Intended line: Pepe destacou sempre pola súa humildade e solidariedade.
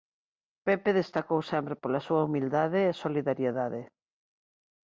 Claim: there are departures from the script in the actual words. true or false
false